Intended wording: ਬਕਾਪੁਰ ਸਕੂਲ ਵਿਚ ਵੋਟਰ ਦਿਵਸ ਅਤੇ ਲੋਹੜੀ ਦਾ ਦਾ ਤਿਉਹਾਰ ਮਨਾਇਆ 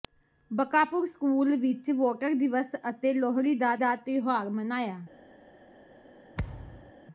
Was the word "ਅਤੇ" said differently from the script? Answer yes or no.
no